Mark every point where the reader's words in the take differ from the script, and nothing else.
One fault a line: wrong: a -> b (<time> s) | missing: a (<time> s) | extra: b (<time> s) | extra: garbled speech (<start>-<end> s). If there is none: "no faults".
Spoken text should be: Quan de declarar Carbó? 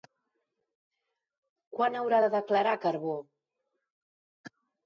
extra: haurà (2.0 s)